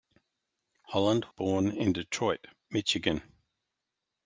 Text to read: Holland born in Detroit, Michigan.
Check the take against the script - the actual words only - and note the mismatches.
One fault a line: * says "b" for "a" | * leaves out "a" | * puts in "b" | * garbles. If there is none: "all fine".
all fine